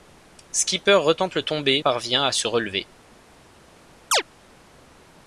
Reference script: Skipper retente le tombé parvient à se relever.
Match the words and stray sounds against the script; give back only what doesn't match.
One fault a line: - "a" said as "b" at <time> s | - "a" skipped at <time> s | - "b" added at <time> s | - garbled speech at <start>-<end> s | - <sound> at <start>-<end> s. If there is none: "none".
- chirp at 4.1-4.2 s